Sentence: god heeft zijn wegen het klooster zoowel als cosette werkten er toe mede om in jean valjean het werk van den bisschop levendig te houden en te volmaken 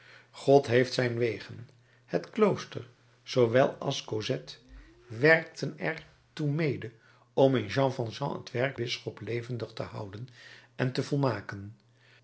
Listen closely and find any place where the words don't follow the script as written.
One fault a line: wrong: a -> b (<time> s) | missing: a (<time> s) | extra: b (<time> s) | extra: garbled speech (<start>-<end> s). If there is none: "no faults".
missing: van den (8.8 s)